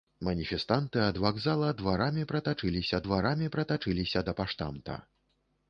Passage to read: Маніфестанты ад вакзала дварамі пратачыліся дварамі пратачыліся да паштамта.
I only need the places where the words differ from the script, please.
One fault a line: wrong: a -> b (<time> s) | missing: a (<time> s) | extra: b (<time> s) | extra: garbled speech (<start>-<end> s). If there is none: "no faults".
no faults